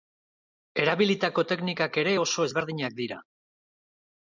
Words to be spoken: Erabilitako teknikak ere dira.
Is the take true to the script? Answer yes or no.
no